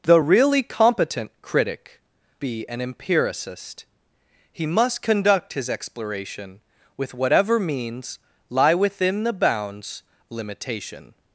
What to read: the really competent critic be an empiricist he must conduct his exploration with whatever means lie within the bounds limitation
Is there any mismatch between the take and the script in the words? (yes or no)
no